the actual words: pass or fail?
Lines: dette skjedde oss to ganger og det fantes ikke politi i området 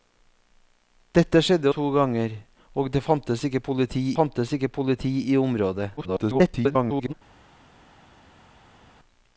fail